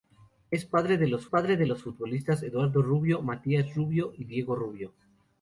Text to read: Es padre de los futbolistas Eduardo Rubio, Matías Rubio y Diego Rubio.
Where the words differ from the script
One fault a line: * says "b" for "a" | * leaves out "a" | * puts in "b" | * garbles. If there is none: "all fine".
* puts in "padre de los"